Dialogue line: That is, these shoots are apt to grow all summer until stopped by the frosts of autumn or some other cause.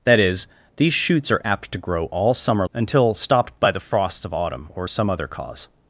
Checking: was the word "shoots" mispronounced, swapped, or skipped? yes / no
no